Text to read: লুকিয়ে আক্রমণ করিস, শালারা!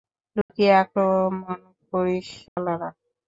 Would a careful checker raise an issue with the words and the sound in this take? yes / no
yes